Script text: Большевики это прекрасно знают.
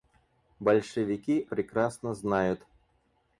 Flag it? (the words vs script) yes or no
yes